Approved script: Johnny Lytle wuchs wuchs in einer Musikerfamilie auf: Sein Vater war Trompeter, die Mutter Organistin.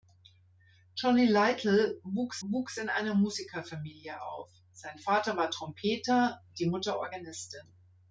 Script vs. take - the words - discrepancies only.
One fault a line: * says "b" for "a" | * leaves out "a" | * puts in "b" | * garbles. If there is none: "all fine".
all fine